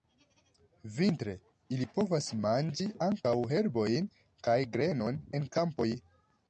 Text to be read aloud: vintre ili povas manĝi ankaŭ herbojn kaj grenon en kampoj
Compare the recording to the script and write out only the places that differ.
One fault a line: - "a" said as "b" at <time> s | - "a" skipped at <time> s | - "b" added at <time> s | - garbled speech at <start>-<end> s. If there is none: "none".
none